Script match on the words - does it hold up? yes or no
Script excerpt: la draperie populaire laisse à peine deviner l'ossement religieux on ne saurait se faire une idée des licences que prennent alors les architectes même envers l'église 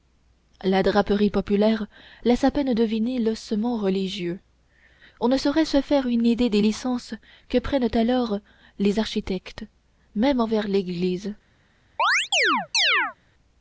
yes